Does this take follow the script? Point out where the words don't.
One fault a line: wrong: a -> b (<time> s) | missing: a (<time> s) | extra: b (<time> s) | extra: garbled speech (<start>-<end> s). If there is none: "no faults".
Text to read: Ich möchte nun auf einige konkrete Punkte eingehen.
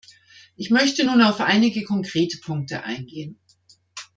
no faults